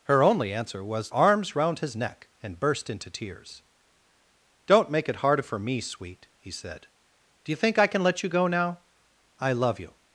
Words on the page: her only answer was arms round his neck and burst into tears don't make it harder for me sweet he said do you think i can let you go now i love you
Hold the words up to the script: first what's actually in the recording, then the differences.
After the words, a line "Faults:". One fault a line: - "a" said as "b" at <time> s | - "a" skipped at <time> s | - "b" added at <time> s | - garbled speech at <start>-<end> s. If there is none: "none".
her only answer was arms round his neck and burst into tears don't make it harder for me sweet he said do you think i can let you go now i love you
Faults:
none